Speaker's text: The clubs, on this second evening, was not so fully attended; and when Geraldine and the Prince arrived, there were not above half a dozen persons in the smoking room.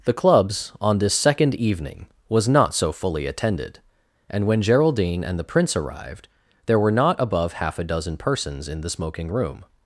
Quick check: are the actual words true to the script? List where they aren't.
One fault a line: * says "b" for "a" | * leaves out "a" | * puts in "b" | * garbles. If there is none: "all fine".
all fine